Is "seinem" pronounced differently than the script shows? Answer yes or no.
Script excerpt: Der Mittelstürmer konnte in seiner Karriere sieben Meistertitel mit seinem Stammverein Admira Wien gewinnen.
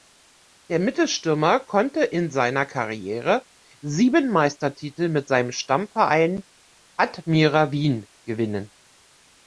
no